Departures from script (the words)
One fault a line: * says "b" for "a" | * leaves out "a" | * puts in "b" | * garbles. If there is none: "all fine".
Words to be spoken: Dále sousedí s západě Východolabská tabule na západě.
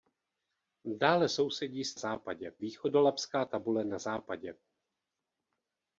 all fine